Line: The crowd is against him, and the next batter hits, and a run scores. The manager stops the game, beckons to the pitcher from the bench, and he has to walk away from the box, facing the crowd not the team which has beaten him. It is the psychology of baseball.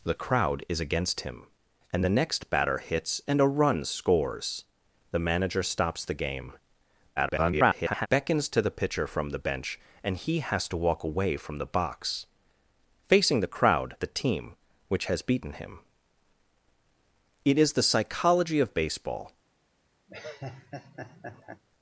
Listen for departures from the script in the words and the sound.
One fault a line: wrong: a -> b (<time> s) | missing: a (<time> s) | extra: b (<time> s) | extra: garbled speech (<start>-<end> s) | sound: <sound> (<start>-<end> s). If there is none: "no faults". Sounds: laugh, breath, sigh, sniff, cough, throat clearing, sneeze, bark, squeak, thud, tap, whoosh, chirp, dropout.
extra: garbled speech (7.2-8.1 s)
missing: not (13.9 s)
sound: laugh (20.1-21.6 s)